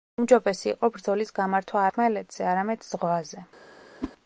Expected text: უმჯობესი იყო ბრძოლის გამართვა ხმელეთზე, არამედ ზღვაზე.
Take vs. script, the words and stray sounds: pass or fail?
fail